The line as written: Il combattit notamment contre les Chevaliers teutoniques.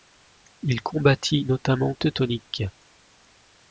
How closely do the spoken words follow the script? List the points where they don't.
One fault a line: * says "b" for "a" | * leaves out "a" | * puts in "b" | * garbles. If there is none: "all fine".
* leaves out "contre les Chevaliers"